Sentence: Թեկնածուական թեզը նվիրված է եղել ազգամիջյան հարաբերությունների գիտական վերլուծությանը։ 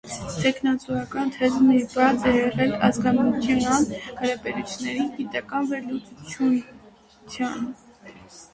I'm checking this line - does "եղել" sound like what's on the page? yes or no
yes